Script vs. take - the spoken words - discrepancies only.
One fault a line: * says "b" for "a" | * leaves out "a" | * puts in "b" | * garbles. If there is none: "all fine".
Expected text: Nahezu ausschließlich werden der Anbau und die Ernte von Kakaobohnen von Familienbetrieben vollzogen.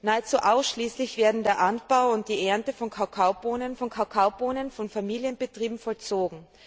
* puts in "Kakaobohnen von"